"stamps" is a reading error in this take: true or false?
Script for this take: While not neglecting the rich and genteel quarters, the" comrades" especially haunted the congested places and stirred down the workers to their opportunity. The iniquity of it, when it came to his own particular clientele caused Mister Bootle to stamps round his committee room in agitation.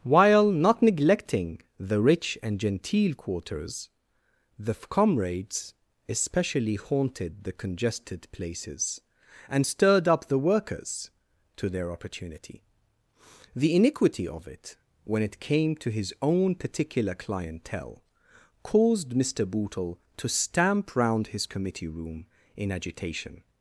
true